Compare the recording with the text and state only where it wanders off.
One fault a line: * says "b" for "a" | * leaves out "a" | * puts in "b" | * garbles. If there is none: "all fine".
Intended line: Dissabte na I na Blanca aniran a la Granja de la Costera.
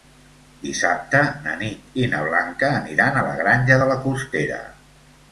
* puts in "Nit"